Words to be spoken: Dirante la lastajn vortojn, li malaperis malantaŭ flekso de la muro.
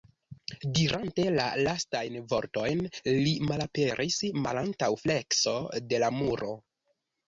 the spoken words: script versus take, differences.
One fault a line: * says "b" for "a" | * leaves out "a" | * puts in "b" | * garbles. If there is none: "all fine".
all fine